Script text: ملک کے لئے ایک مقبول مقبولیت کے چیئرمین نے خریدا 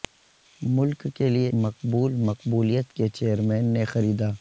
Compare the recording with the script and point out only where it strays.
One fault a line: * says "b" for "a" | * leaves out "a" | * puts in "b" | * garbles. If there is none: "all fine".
* leaves out "ایک"